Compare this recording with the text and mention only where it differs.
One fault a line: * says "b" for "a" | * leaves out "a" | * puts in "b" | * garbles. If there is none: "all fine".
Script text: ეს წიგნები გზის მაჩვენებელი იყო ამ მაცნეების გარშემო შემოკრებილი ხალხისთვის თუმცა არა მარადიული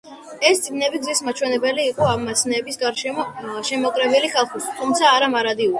all fine